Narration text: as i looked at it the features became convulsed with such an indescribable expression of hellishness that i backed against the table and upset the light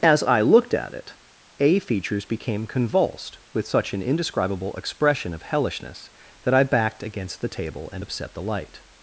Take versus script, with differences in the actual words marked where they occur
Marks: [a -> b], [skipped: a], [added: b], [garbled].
as i looked at it [the -> a] features became convulsed with such an indescribable expression of hellishness that i backed against the table and upset the light